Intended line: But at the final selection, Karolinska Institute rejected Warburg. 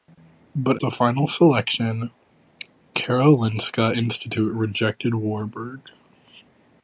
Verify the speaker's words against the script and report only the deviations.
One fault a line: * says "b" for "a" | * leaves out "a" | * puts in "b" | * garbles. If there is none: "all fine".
* leaves out "at"